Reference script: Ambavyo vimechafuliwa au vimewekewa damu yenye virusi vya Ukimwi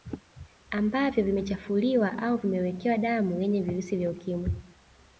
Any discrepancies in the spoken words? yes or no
no